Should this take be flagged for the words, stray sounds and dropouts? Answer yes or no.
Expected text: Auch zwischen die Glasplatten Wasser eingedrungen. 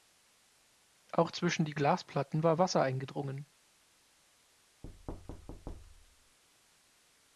yes